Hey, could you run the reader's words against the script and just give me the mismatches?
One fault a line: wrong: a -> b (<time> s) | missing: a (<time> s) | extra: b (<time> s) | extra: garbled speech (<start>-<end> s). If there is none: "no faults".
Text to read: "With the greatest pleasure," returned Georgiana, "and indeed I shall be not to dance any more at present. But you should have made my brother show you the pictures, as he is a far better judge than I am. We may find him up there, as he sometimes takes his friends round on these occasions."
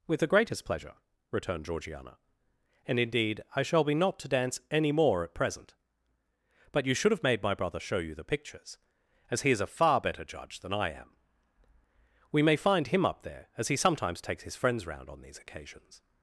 no faults